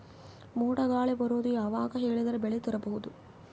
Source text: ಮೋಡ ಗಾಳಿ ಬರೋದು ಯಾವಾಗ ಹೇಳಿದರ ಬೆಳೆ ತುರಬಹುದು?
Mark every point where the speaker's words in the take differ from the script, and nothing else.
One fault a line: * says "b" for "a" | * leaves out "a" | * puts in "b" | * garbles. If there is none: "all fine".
all fine